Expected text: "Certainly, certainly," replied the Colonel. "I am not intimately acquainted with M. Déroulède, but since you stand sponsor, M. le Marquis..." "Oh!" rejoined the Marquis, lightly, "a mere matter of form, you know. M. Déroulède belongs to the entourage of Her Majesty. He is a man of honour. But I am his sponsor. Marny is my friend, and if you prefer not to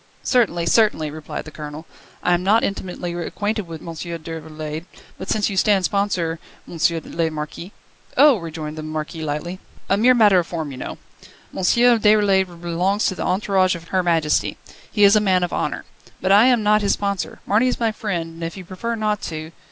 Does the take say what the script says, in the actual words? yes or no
no